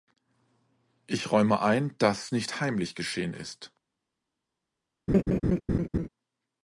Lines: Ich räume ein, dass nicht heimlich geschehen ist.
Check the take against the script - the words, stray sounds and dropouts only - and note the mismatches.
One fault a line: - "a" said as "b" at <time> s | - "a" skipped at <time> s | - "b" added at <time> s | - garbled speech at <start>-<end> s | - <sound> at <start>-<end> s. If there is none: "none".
- laugh at 5.1-6.1 s